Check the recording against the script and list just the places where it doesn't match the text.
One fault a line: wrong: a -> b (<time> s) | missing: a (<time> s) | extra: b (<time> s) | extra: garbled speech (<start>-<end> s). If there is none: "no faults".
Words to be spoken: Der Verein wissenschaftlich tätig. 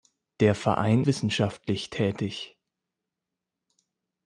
no faults